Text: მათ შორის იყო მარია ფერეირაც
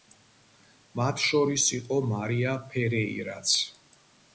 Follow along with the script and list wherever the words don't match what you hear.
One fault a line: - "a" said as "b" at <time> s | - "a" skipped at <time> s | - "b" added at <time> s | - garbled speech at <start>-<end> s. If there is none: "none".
none